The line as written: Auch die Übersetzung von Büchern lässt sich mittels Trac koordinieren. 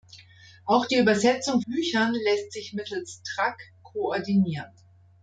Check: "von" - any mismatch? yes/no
yes